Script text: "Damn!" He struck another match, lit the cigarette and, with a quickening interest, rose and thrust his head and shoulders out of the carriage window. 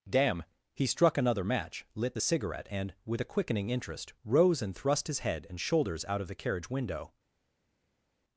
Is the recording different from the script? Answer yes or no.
no